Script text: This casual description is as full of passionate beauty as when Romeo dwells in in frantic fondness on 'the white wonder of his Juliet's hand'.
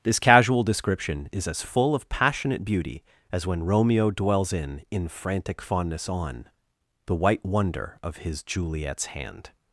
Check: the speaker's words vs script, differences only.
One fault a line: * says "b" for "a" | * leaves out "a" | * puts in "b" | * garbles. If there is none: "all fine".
all fine